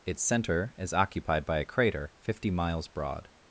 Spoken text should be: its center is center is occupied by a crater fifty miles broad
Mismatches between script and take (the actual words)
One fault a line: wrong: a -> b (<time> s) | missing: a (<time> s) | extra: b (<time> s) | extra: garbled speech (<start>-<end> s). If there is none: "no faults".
missing: center is (0.9 s)